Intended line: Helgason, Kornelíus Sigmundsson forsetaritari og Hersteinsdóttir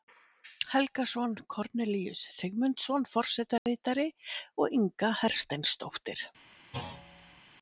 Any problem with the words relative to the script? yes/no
yes